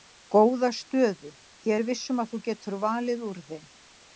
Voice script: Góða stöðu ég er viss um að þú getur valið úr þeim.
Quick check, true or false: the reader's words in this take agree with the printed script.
true